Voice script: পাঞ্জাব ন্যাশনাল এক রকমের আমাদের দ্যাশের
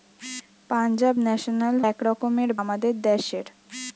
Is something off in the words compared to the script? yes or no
no